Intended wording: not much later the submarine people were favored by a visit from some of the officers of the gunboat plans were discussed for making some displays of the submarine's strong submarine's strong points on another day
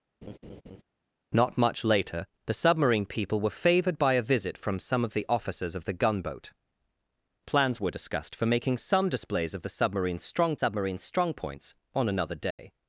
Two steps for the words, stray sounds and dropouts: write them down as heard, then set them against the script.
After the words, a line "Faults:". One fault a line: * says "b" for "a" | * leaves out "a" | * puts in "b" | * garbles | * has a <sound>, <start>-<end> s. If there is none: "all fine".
not much later the submarine people were favored by a visit from some of the officers of the gunboat plans were discussed for making some displays of the submarine's strong submarine's strong points on another day
Faults:
* has a laugh, 0.2-0.8 s
* has a dropout, 12.5-12.6 s